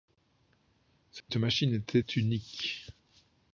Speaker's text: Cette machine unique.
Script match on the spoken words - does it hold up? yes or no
no